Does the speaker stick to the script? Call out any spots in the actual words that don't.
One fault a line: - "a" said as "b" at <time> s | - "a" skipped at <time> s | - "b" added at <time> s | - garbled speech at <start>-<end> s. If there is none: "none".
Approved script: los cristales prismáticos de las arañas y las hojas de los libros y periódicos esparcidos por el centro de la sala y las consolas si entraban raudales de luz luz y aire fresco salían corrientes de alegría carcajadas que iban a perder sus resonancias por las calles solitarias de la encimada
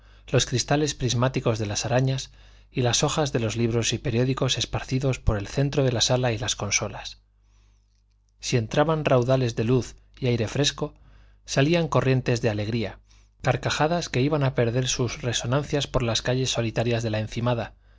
- "luz" skipped at 9.9 s